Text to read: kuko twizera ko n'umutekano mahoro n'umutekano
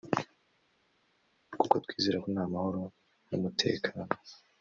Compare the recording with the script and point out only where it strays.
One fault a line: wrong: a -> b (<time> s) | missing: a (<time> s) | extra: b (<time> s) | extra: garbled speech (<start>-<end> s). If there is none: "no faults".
wrong: n'umutekano -> nta (2.3 s)